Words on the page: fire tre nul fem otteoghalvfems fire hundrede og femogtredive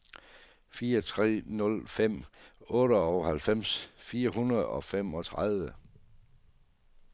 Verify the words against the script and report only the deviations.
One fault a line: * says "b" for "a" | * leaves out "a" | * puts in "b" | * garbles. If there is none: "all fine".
all fine